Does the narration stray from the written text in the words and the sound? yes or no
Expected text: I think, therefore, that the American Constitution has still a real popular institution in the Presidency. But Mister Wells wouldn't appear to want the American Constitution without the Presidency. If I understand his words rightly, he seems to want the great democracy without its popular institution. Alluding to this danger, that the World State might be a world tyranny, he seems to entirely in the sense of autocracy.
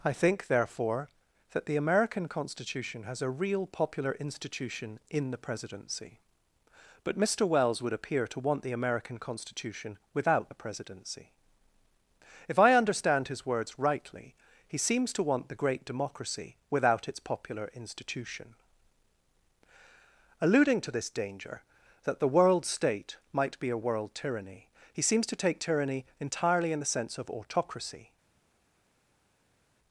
yes